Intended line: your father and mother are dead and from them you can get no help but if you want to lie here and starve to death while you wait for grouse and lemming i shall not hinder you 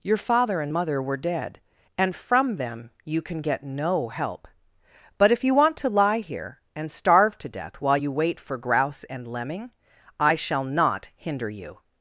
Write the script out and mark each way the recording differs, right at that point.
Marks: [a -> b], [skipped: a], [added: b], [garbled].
your father and mother [are -> were] dead and from them you can get no help but if you want to lie here and starve to death while you wait for grouse and lemming i shall not hinder you